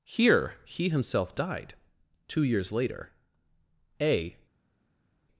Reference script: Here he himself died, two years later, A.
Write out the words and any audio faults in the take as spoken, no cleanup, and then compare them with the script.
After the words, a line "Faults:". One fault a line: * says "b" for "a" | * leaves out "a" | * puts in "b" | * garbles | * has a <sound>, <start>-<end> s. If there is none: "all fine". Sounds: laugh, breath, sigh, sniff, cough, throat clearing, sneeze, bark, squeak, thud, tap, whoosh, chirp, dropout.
Here he himself died, two years later, A.
Faults:
all fine